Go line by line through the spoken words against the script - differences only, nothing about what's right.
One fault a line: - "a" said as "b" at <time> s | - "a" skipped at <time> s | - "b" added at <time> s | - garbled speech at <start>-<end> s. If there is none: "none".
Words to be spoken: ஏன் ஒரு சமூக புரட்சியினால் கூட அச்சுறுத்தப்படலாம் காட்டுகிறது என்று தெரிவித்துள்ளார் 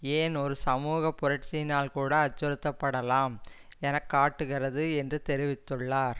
- "என" added at 3.8 s